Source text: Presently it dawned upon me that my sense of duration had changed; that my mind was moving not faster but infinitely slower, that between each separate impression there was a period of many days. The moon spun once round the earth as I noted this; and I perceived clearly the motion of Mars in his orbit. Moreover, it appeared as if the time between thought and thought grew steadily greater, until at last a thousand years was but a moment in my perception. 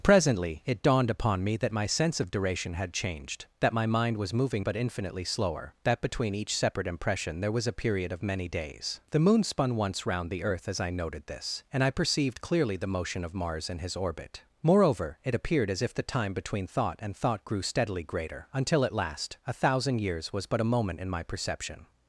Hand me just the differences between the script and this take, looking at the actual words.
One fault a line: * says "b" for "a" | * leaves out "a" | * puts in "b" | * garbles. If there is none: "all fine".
* leaves out "not faster"